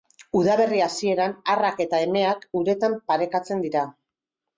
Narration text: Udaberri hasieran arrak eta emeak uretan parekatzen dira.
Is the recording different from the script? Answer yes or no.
no